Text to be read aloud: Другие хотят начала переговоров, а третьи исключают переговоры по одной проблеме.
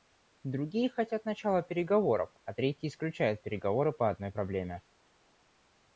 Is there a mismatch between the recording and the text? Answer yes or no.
no